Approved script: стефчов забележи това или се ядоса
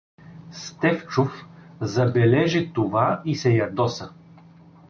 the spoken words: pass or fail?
fail